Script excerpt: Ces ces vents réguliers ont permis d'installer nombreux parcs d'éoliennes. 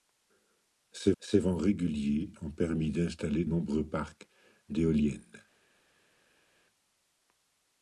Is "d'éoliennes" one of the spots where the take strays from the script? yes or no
no